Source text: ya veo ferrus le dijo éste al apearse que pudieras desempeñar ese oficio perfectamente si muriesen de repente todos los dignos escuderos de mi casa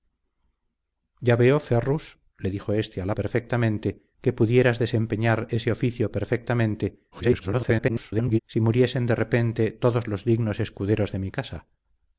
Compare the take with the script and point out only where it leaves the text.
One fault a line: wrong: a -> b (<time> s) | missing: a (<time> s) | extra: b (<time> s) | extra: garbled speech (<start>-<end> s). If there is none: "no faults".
wrong: apearse -> perfectamente (3.1 s)
extra: garbled speech (7.1-8.4 s)